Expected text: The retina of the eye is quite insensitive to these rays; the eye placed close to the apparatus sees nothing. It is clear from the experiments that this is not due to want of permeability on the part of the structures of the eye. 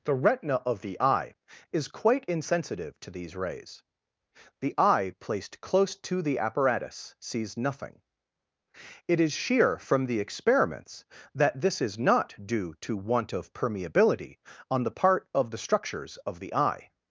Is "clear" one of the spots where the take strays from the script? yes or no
yes